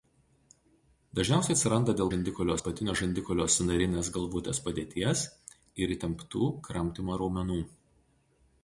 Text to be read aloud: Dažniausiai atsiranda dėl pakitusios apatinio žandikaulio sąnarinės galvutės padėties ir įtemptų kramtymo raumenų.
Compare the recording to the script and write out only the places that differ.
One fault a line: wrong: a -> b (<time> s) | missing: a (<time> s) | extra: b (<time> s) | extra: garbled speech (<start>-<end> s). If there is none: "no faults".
wrong: pakitusios -> žandikaulio (2.1 s)